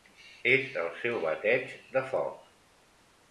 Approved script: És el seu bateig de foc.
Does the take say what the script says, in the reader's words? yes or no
yes